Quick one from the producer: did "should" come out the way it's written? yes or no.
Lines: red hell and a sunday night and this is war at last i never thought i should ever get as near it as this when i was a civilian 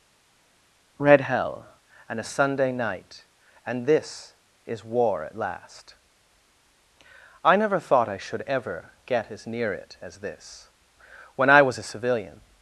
yes